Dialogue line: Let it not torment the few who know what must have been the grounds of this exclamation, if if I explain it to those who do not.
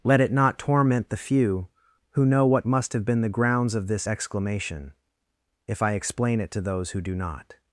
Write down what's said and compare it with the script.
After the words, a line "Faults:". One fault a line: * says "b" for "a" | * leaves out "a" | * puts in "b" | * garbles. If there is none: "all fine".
Let it not torment the few who know what must have been the grounds of this exclamation, if I explain it to those who do not.
Faults:
* leaves out "if"